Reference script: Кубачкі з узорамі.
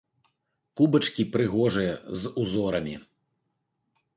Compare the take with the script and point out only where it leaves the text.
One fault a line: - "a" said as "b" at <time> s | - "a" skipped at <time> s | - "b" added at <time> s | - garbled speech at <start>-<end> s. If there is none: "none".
- "прыгожыя" added at 1.4 s